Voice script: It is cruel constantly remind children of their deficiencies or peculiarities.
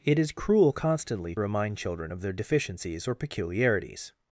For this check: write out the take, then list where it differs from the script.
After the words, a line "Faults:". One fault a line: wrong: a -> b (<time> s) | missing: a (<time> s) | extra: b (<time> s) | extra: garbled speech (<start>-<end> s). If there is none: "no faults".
It is cruel constantly remind children of their deficiencies or peculiarities.
Faults:
no faults